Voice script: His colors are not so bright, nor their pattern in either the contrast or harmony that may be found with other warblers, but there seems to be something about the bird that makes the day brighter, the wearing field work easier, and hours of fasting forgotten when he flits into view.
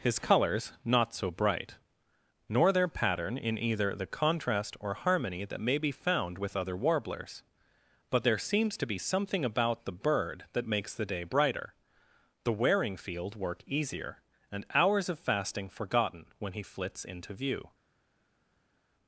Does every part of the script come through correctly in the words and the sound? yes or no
no